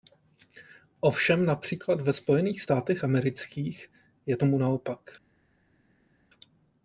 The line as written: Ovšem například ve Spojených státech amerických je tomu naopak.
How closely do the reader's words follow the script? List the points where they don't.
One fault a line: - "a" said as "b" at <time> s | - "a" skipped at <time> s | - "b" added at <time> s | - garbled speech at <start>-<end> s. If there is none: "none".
none